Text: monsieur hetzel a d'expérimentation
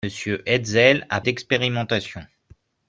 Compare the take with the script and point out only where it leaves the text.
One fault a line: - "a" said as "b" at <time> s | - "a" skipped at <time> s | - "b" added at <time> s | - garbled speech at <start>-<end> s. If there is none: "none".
none